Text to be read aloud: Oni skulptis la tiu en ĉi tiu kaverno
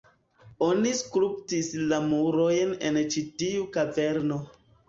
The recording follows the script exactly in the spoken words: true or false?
false